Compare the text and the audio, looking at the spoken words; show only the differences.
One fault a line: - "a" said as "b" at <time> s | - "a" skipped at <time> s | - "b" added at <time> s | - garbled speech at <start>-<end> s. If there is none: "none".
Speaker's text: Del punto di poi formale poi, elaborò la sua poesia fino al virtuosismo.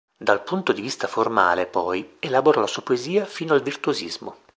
- "Del" said as "Dal" at 0.2 s
- "poi" said as "vista" at 0.8 s